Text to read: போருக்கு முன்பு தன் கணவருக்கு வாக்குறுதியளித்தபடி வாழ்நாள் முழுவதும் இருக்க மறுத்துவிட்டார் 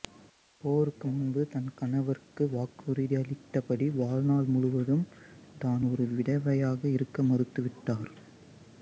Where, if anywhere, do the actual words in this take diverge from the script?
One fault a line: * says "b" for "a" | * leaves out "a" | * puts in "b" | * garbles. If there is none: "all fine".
* puts in "தான் ஒரு விதவையாக"